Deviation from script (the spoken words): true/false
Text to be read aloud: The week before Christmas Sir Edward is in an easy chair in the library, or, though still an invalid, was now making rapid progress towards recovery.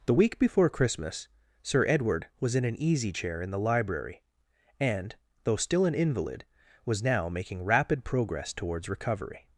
true